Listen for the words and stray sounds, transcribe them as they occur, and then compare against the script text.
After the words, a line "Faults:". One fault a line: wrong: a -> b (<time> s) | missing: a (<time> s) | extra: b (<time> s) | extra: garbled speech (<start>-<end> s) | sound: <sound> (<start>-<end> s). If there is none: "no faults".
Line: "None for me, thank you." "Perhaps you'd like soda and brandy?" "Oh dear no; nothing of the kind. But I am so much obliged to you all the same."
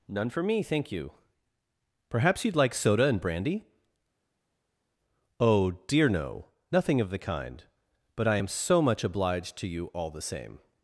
"None for me, thank you." "Perhaps you'd like soda and brandy?" "Oh dear no; nothing of the kind. But I am so much obliged to you all the same."
Faults:
no faults